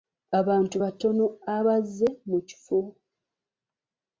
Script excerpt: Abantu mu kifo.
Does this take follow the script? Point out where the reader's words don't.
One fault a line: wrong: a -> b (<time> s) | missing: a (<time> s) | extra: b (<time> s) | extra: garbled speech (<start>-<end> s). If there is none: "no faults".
extra: batono abazze (0.8 s)